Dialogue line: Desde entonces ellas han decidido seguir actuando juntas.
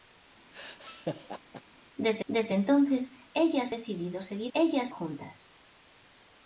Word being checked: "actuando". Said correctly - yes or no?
no